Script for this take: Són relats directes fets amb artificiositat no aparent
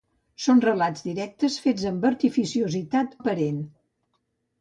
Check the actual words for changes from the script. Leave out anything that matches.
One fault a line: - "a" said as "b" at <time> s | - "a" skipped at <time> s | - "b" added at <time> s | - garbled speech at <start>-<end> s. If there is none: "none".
- "no" skipped at 3.1 s